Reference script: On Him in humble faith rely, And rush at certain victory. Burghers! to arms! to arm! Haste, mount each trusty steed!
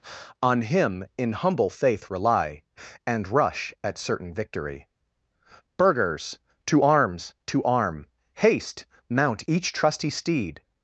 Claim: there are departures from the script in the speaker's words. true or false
false